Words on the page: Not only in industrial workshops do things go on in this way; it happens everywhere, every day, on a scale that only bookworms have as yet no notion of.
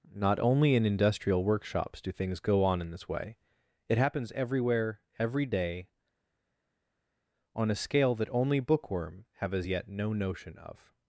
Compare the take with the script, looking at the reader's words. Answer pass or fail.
fail